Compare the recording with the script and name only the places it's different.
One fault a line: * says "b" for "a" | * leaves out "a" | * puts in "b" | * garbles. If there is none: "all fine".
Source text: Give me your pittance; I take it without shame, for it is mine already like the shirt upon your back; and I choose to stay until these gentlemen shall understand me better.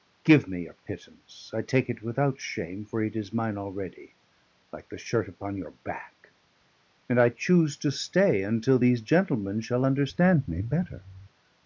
all fine